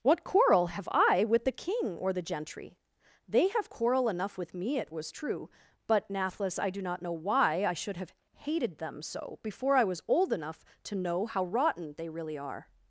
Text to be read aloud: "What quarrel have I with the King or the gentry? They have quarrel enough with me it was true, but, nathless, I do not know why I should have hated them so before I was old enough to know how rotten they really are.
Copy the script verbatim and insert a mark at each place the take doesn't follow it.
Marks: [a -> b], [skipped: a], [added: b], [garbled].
"What quarrel have I with the King or the gentry? They have quarrel enough with me it was true, but, nathless, I do not know why I should have hated them so before I was old enough to know how rotten they really are.